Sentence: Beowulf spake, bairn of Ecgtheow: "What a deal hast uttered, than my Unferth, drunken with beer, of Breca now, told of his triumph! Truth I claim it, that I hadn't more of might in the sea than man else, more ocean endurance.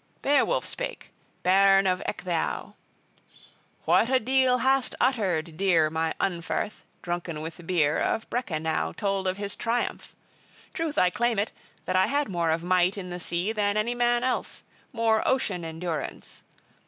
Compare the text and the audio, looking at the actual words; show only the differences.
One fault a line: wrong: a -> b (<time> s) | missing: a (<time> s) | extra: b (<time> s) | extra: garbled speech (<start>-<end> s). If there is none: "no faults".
wrong: than -> dear (5.6 s)
wrong: hadn't -> had (12.1 s)
extra: any (13.8 s)